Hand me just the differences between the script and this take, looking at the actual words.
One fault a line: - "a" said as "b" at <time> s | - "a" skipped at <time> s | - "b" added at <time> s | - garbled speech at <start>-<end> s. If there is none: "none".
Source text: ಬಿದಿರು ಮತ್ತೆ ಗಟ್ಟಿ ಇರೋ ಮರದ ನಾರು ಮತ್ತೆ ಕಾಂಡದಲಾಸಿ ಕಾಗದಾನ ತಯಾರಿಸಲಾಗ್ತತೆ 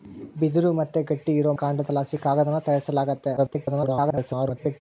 - "ಮರದ ನಾರು ಮತ್ತೆ" skipped at 1.5 s
- garbled speech at 3.4-4.8 s